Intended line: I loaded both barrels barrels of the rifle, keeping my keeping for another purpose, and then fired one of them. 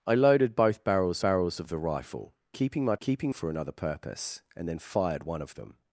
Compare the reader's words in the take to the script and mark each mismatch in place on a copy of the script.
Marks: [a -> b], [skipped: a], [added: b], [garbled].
I loaded both barrels barrels of the rifle, keeping my keeping for another purpose, and then fired one of them.